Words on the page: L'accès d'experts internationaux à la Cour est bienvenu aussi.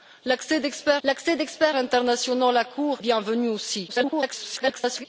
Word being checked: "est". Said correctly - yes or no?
no